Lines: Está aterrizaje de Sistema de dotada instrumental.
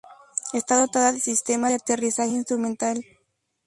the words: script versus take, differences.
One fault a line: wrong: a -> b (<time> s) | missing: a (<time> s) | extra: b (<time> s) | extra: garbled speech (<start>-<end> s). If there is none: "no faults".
wrong: aterrizaje -> dotada (0.8 s)
wrong: dotada -> aterrizaje (1.7 s)